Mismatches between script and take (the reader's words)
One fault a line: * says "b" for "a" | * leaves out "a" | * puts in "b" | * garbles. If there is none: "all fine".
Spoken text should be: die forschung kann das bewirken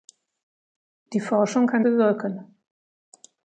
* leaves out "das"